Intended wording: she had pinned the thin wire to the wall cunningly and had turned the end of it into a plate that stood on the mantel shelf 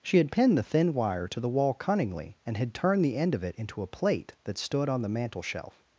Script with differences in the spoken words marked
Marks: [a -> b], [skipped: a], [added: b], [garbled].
she had pinned the thin wire to the wall cunningly and had turned the end of it into a plate that stood on the mantel shelf